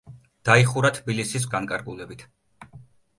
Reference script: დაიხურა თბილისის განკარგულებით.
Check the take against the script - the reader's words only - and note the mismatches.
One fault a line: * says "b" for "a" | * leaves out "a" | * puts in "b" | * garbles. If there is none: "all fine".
all fine